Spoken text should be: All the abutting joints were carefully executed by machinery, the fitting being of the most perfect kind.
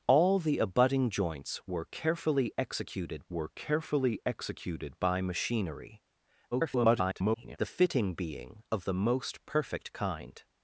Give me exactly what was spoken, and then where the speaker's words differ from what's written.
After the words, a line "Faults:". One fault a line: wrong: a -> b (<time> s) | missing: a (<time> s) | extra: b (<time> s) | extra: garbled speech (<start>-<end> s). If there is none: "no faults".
All the abutting joints were carefully executed were carefully executed by machinery, [garbled] the fitting being of the most perfect kind.
Faults:
extra: were carefully executed (3.3 s)
extra: garbled speech (6.5-7.6 s)